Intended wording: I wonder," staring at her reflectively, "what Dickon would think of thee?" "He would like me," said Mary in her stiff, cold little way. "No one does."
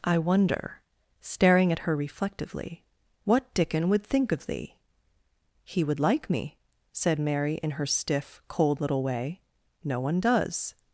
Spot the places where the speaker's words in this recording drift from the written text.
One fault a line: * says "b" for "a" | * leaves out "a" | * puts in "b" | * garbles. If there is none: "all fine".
all fine